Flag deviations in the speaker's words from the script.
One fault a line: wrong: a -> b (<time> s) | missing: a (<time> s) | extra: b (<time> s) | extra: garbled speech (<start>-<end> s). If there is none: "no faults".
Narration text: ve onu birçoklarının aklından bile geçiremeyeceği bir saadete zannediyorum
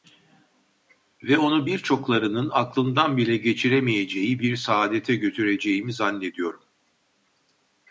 extra: götüreceğimi (5.2 s)